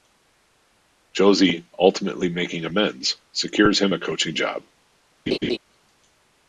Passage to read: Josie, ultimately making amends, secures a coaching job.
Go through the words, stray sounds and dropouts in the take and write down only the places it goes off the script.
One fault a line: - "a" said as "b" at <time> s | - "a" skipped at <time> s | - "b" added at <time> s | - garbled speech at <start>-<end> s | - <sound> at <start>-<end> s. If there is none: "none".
- "him" added at 3.8 s
- laugh at 5.3-5.6 s